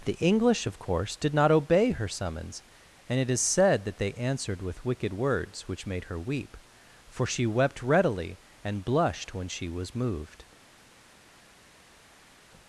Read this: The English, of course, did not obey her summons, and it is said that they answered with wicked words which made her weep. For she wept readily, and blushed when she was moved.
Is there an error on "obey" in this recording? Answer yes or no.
no